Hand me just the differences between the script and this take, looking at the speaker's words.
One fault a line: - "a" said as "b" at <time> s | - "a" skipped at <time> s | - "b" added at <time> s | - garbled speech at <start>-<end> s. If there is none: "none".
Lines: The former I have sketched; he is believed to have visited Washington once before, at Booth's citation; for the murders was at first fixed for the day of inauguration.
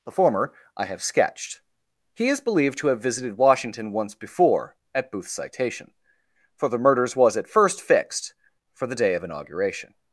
none